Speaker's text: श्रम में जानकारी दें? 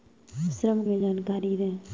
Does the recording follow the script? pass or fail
pass